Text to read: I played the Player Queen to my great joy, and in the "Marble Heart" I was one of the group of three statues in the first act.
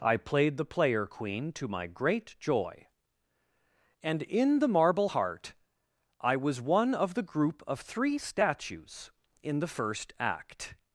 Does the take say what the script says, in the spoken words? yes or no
yes